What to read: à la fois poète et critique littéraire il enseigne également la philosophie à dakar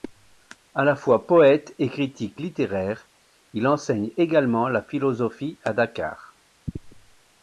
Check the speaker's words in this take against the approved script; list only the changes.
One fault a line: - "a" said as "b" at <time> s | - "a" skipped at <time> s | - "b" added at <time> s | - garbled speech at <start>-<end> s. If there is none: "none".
none